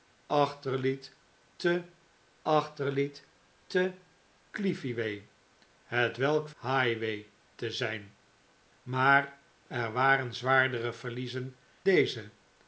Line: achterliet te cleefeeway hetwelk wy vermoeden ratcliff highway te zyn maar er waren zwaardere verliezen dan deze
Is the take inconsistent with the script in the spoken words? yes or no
yes